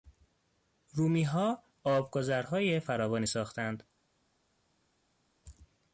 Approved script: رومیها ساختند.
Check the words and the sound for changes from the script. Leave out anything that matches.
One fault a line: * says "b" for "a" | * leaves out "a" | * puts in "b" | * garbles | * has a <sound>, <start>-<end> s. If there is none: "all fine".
* puts in "آبگذرهای فراوانی"